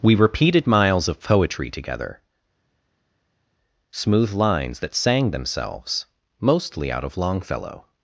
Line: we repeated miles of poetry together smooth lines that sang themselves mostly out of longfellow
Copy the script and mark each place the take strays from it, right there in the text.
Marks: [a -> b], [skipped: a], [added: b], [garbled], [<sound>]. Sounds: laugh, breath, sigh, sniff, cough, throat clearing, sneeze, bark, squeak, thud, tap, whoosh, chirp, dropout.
we repeated miles of poetry together smooth lines that sang themselves mostly out of longfellow